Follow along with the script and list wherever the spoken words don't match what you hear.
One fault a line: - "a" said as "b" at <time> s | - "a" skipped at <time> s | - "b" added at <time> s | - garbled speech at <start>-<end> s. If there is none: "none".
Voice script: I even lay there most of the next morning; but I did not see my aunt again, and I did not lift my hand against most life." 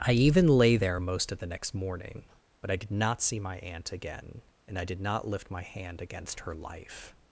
- "most" said as "her" at 6.4 s